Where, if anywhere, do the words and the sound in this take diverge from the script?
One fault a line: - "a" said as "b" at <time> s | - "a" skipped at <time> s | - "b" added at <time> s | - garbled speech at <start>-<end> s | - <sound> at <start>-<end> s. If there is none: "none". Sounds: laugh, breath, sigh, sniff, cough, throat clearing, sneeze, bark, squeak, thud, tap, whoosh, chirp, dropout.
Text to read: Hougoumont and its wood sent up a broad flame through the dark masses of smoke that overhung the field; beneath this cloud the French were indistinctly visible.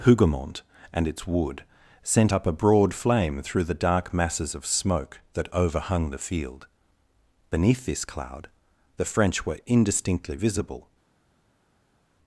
none